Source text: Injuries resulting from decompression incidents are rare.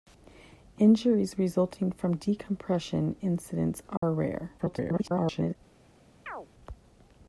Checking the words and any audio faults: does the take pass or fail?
fail